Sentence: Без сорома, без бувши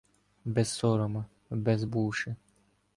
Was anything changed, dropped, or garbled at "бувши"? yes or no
no